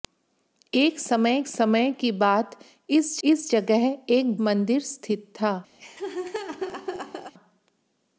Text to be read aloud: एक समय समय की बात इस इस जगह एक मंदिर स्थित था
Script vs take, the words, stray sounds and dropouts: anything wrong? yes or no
yes